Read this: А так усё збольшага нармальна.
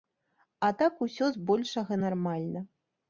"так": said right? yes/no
yes